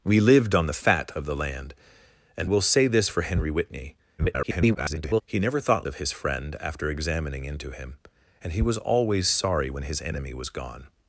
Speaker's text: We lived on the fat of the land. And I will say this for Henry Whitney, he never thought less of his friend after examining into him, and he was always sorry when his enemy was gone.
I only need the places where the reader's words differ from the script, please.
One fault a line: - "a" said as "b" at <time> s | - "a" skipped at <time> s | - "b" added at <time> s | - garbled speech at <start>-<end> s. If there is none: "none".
- "I" skipped at 2.5 s
- garbled speech at 4.2-5.2 s
- "less" skipped at 5.9 s